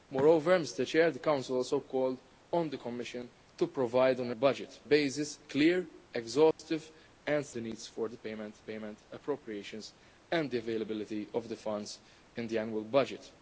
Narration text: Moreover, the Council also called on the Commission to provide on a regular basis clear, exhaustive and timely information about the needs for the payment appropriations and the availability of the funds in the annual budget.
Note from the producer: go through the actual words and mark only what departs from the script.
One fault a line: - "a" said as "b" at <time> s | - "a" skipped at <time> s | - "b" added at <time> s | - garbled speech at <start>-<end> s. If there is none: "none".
- "regular" said as "budget" at 4.3 s
- "timely information about" skipped at 7.4 s
- "payment" added at 8.6 s